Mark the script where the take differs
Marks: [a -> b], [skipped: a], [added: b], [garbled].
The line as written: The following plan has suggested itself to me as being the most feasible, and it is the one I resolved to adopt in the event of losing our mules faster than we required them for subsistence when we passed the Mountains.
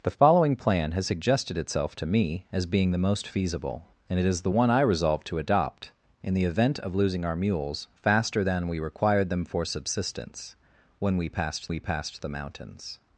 The following plan has suggested itself to me as being the most feasible, and it is the one I resolved to adopt in the event of losing our mules faster than we required them for subsistence when we passed [added: we passed] the Mountains.